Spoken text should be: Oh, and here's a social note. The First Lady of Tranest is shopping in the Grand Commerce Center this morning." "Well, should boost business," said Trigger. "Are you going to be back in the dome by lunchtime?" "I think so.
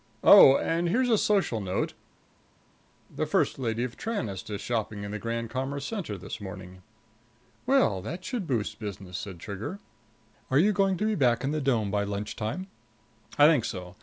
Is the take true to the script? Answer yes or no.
no